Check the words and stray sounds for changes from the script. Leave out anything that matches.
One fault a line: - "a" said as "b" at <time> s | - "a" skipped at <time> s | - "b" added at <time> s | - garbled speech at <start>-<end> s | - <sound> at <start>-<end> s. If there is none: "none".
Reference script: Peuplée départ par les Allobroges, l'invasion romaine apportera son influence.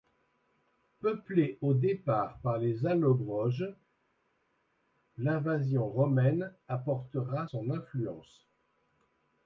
- "au" added at 1.6 s